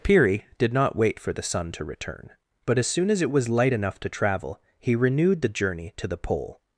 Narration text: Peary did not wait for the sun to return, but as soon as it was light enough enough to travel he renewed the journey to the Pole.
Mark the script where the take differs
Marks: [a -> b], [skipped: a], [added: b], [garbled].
Peary did not wait for the sun to return, but as soon as it was light enough [skipped: enough] to travel he renewed the journey to the Pole.